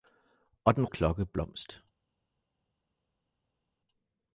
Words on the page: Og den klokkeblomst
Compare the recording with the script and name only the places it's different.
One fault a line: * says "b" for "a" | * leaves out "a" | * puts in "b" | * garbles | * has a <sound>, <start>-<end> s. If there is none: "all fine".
all fine